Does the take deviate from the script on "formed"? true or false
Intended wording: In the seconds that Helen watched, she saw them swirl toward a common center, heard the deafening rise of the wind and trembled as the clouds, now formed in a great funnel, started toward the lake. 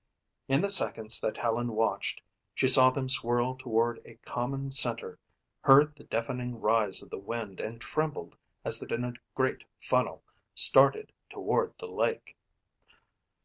true